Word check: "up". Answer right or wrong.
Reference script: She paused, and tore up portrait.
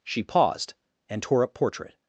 right